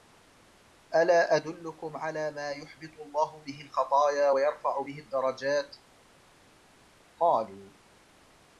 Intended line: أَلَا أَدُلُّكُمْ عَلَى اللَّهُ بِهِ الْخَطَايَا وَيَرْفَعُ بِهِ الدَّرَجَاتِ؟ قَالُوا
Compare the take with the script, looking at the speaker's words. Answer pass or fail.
fail